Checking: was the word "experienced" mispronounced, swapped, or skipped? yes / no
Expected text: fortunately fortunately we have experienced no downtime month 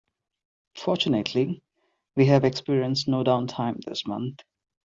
no